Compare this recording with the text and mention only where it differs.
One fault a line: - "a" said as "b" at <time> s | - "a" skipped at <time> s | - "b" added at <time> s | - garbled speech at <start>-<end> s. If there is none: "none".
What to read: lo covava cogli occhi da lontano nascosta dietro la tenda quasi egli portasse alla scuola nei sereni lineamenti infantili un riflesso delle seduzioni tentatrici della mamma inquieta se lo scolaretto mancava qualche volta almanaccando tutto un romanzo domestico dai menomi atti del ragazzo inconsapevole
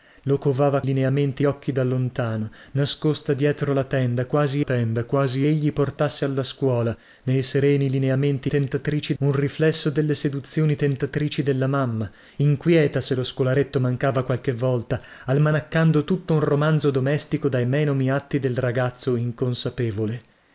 - "cogli" said as "lineamenti" at 0.8 s
- "tenda quasi" added at 4.6 s
- "infantili" said as "tentatrici" at 8.5 s